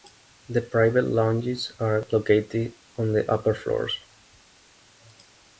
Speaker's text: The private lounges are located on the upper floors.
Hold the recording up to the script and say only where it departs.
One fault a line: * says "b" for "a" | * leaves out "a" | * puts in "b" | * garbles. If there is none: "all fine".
all fine